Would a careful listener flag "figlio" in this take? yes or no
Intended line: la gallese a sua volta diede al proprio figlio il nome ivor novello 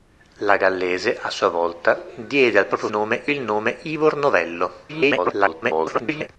yes